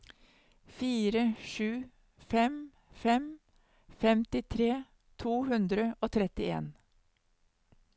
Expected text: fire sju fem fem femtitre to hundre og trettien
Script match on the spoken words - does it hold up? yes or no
yes